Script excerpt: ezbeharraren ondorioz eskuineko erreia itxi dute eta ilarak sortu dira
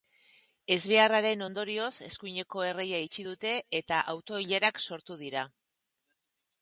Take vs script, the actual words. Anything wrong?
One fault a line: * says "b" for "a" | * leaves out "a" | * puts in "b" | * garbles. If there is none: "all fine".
* puts in "auto"